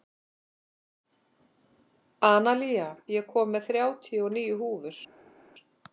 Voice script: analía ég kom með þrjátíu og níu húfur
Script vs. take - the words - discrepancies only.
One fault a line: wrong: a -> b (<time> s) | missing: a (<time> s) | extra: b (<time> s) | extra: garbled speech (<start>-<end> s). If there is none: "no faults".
no faults